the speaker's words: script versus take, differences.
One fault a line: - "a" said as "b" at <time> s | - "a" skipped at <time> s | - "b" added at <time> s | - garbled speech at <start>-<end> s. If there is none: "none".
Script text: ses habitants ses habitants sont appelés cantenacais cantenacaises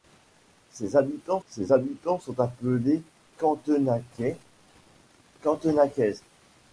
none